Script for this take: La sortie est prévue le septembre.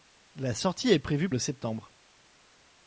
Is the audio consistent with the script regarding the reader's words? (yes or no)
yes